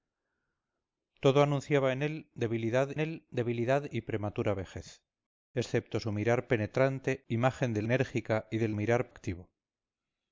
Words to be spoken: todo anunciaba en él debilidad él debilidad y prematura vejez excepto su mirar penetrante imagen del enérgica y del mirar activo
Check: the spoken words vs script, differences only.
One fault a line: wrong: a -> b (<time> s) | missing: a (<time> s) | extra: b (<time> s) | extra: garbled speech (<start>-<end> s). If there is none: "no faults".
no faults